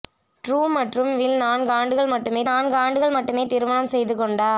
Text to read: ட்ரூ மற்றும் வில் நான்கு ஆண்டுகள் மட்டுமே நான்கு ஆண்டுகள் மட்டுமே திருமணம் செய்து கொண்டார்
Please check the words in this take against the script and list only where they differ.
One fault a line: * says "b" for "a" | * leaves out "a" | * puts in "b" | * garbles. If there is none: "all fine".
all fine